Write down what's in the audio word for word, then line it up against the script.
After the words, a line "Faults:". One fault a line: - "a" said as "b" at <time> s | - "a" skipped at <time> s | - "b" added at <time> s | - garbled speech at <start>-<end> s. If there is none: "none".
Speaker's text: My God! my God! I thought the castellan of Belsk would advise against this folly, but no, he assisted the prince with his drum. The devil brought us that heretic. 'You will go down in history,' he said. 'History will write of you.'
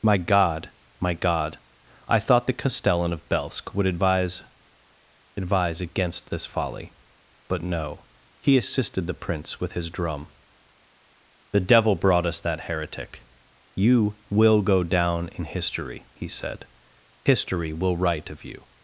My God! my God! I thought the castellan of Belsk would advise advise against this folly, but no, he assisted the prince with his drum. The devil brought us that heretic. 'You will go down in history,' he said. 'History will write of you.'
Faults:
- "advise" added at 5.4 s